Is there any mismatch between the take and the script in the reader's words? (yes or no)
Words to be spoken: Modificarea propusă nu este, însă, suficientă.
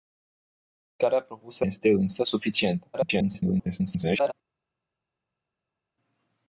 yes